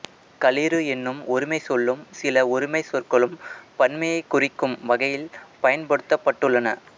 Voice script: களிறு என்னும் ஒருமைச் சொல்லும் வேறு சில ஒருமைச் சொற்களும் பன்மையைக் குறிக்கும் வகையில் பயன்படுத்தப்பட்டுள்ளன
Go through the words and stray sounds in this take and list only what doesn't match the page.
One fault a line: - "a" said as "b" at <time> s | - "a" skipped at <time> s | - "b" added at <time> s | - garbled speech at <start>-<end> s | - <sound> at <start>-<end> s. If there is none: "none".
- "வேறு" skipped at 2.0 s